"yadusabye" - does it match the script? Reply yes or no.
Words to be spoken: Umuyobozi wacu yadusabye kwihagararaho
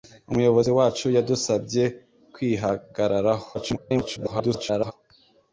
yes